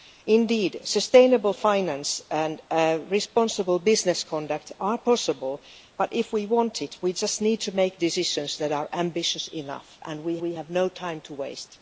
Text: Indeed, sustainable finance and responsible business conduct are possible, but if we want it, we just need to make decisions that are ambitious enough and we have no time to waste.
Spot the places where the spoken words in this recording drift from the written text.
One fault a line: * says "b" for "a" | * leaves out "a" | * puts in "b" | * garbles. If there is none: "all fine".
* puts in "we"